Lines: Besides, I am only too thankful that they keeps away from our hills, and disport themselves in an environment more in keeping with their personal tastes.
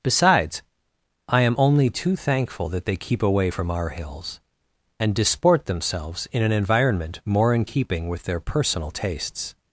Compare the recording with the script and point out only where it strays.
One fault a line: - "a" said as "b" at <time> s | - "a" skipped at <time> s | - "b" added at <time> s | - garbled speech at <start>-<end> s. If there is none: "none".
- "keeps" said as "keep" at 3.0 s